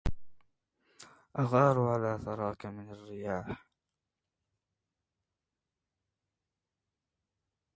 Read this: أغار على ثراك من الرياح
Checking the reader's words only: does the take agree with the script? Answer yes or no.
yes